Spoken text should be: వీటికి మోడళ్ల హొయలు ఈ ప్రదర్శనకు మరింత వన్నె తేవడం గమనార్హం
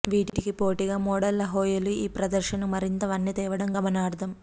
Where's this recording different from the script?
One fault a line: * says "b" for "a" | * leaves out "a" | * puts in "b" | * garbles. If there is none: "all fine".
* puts in "పోటీగా"